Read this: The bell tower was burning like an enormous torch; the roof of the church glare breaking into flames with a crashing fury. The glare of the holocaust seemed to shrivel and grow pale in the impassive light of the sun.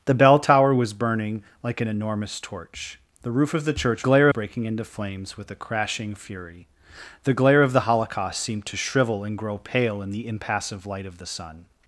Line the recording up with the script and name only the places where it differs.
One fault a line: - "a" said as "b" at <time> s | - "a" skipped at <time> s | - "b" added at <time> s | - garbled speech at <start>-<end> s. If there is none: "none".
none